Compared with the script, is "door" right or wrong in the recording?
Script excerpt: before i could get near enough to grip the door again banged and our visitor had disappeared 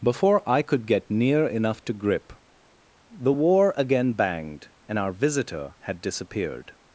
wrong